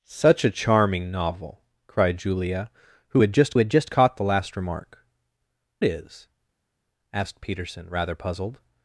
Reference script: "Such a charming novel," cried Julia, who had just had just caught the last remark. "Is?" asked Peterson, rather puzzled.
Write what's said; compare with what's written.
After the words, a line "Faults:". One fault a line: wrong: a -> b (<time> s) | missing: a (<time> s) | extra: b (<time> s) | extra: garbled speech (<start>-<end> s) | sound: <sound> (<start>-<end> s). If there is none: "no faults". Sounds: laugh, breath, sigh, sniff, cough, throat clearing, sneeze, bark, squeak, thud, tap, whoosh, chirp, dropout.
"Such a charming novel," cried Julia, who had just had just caught the last remark. "Is?" asked Peterson, rather puzzled.
Faults:
no faults